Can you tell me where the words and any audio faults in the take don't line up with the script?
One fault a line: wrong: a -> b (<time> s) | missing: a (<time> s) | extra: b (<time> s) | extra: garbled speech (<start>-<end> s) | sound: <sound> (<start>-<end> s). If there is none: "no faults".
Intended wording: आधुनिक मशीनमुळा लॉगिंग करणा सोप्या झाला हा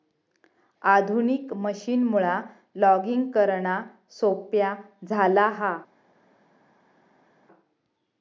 no faults